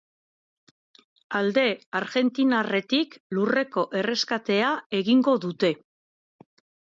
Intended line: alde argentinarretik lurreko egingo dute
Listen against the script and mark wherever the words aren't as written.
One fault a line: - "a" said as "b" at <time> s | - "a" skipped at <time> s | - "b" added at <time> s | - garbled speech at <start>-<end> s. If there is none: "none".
- "erreskatea" added at 4.0 s